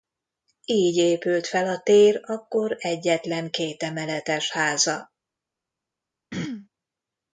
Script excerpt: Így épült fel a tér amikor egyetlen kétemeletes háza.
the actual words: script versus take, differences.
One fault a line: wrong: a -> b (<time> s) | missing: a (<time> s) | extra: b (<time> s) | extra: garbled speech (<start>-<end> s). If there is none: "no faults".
wrong: amikor -> akkor (2.2 s)